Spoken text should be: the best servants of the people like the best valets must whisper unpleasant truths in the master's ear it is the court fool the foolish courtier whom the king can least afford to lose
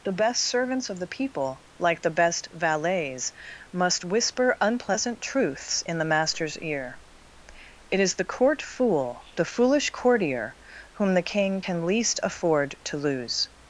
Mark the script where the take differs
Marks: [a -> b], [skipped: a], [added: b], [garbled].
the best servants of the people like the best valets must whisper unpleasant truths in the master's ear it is the court fool the foolish courtier whom the king can least afford to lose